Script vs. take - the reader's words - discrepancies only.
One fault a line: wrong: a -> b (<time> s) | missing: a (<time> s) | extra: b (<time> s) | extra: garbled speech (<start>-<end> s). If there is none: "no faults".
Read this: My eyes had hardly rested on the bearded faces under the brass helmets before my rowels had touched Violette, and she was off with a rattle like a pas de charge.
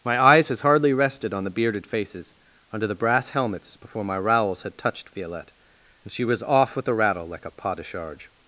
wrong: had -> has (0.5 s)